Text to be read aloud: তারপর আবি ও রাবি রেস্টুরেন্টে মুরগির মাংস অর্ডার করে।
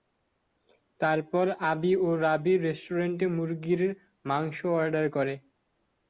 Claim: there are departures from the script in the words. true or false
false